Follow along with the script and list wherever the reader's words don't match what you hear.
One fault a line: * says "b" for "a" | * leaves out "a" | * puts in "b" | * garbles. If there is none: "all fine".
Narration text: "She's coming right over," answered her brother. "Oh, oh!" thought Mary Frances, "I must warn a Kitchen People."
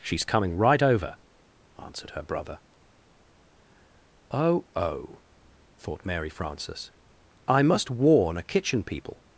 all fine